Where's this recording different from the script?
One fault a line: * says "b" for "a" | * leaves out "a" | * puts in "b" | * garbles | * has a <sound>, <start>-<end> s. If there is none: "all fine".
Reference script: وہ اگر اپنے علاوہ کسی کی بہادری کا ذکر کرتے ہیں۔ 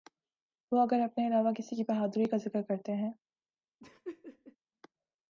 * has a laugh, 3.8-4.6 s